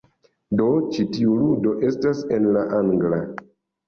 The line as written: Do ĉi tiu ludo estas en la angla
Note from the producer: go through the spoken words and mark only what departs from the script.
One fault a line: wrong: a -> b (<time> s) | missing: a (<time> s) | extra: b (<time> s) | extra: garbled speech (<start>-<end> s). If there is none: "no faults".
no faults